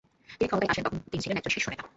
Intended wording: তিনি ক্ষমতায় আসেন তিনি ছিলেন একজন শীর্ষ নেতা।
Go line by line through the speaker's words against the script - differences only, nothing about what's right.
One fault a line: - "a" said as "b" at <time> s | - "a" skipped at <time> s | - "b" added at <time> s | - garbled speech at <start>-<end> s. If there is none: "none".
- "তখন" added at 0.8 s